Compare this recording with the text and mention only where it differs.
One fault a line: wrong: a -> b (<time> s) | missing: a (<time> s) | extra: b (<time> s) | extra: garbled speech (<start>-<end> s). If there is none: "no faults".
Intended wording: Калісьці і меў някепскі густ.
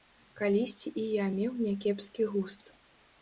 extra: я (1.1 s)